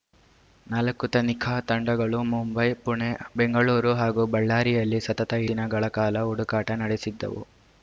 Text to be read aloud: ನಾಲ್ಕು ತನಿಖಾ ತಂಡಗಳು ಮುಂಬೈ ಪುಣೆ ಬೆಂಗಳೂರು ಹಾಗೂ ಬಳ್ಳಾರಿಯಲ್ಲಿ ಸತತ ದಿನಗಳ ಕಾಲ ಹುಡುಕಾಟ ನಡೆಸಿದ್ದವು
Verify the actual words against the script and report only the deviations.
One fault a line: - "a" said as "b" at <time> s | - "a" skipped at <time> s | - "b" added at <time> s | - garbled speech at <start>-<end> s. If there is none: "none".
none